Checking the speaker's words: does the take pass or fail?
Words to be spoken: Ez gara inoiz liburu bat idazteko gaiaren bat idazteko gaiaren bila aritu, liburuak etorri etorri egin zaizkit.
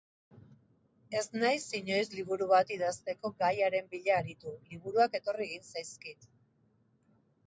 fail